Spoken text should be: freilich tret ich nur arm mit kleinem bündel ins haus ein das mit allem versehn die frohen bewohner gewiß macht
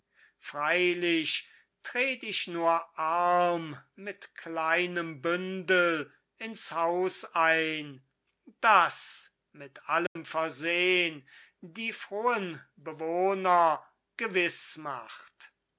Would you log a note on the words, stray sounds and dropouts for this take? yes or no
yes